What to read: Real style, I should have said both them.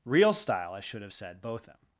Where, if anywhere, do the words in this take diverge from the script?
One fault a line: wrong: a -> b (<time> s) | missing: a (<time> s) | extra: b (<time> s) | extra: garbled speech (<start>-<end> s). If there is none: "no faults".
no faults